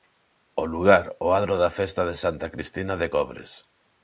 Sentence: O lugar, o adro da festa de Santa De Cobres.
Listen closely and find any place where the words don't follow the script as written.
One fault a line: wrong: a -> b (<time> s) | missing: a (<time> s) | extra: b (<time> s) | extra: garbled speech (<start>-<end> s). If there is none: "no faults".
extra: Cristina (2.5 s)